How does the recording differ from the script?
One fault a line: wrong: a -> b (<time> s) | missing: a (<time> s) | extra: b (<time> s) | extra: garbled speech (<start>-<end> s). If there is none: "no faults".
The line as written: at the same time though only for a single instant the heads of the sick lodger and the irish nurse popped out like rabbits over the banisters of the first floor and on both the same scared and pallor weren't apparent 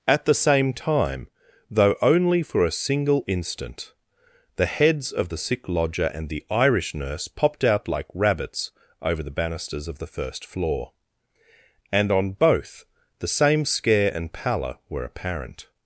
wrong: scared -> scare (13.6 s)
wrong: weren't -> were (14.9 s)